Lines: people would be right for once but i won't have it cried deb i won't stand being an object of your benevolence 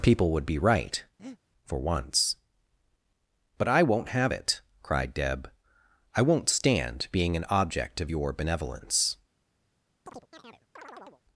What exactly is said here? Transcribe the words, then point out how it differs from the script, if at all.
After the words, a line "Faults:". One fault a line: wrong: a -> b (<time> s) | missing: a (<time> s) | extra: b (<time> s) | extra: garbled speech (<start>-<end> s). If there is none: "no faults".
people would be right for once but i won't have it cried deb i won't stand being an object of your benevolence
Faults:
no faults